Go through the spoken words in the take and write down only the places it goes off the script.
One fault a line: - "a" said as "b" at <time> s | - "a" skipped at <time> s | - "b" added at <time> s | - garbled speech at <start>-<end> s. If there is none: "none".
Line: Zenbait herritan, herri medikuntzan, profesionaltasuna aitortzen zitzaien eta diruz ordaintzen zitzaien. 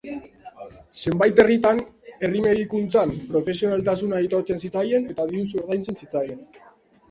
none